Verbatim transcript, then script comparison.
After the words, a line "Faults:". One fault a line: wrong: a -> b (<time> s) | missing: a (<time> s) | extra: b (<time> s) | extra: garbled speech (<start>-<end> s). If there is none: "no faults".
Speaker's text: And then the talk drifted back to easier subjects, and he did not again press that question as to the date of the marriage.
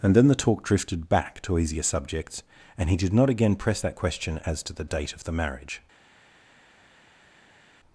And then the talk drifted back to easier subjects, and he did not again press that question as to the date of the marriage.
Faults:
no faults